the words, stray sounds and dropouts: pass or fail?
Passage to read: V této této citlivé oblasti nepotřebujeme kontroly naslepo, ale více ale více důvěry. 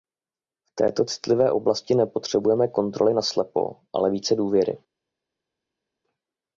fail